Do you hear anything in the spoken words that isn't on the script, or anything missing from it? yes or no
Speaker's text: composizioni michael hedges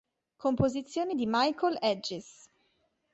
yes